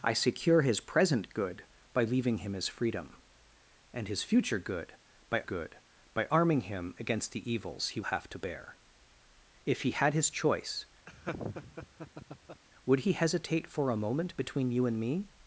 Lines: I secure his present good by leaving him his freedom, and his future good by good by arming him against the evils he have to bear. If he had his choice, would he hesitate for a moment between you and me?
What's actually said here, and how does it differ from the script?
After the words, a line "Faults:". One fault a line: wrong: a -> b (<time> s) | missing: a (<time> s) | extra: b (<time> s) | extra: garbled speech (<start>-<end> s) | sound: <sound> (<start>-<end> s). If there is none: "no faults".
I secure his present good by leaving him his freedom, and his future good by good by arming him against the evils he have to bear. If he had his choice, would he hesitate for a moment between you and me?
Faults:
sound: laugh (11.1-12.6 s)